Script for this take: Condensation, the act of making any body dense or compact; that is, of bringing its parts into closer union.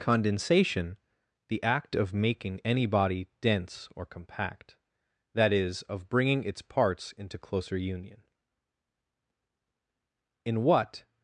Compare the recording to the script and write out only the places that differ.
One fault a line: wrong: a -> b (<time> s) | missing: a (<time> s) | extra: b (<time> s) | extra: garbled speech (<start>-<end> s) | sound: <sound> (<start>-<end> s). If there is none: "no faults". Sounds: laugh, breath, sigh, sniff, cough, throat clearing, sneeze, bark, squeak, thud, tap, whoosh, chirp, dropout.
extra: In what (10.5 s)